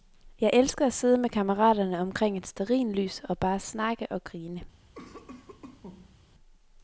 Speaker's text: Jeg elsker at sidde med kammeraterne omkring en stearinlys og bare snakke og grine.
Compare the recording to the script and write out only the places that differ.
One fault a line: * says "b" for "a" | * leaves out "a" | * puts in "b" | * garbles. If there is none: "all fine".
* says "et" for "en"